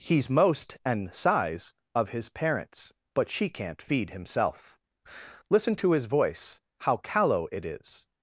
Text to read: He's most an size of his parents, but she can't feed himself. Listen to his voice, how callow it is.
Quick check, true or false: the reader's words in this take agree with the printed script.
true